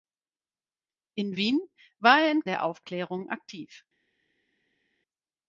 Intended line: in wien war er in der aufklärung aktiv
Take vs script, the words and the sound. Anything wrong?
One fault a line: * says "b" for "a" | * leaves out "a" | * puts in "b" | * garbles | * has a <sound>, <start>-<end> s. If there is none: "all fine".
all fine